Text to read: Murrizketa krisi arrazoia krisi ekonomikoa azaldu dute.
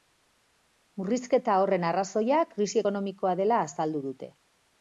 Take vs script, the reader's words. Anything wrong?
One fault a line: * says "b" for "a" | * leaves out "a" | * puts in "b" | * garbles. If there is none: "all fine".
* says "horren" for "krisi"
* puts in "dela"